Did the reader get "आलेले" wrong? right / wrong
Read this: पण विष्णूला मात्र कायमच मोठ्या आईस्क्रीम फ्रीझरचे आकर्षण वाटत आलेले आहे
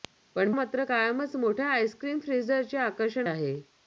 wrong